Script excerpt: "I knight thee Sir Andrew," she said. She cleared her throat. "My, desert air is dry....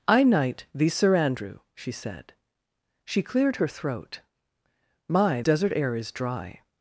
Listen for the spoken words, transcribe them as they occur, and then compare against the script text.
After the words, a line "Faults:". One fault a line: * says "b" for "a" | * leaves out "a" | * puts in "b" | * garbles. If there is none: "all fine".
"I knight thee Sir Andrew," she said. She cleared her throat. "My, desert air is dry....
Faults:
all fine